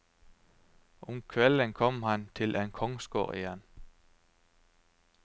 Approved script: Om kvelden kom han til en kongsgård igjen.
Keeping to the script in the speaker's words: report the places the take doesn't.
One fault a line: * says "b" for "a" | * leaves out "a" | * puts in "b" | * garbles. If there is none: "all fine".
all fine